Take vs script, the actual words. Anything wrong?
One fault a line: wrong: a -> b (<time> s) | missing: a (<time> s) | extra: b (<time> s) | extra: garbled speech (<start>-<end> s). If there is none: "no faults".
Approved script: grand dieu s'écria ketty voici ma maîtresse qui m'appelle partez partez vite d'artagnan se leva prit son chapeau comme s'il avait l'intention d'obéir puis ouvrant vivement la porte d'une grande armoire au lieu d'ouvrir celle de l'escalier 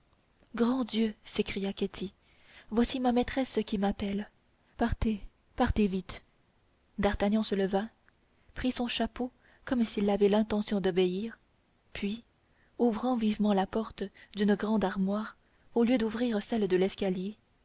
no faults